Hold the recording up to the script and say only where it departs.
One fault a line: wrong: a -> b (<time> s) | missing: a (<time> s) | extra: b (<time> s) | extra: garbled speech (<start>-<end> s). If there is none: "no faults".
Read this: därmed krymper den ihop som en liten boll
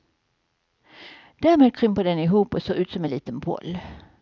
extra: och ser ut (2.5 s)